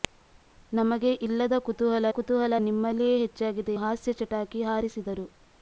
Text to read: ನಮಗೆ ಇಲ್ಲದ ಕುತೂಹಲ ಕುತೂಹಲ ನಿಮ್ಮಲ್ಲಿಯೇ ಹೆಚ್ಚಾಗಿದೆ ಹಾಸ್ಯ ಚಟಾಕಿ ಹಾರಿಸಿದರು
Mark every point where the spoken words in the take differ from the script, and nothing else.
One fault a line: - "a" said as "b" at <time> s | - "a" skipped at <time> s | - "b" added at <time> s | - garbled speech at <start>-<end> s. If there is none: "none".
none